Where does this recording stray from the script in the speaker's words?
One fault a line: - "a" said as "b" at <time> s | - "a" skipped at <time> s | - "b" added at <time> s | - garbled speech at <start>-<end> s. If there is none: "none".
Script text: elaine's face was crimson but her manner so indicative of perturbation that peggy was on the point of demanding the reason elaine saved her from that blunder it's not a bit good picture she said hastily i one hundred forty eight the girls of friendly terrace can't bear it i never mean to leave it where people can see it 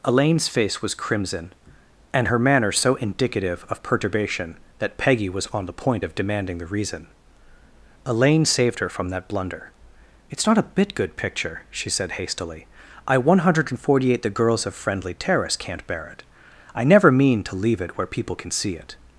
- "but" said as "and" at 2.1 s